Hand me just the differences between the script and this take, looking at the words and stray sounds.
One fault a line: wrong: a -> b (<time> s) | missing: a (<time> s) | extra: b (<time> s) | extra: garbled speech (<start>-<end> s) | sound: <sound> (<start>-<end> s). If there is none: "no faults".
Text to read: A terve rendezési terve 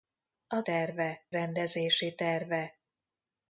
no faults